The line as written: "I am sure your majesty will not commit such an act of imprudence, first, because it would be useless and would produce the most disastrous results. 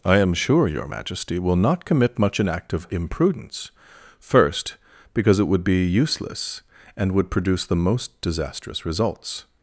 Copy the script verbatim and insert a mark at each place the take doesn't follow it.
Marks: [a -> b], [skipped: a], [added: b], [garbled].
"I am sure your majesty will not commit [such -> much] an act of imprudence, first, because it would be useless and would produce the most disastrous results.